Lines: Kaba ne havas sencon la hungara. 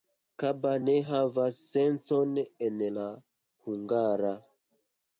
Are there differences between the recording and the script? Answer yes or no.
yes